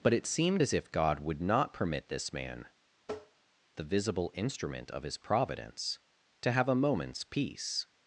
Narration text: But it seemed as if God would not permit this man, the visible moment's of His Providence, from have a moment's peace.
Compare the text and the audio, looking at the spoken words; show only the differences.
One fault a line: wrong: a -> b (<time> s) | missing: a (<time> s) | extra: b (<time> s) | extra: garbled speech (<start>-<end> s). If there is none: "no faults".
wrong: moment's -> instrument (4.3 s)
wrong: from -> to (6.4 s)